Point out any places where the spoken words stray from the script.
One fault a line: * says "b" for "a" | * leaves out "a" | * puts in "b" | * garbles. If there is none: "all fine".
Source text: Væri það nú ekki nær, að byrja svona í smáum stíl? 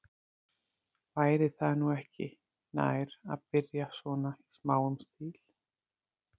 all fine